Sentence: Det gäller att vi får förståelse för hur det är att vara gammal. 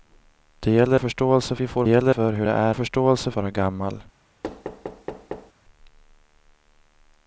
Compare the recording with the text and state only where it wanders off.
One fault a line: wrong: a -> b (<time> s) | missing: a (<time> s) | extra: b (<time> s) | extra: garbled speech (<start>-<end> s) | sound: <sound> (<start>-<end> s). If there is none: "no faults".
wrong: att -> förståelse (1.0 s)
wrong: förståelse -> gäller (1.9 s)
wrong: att -> förståelse (2.7 s)
sound: thud (4.4-5.5 s)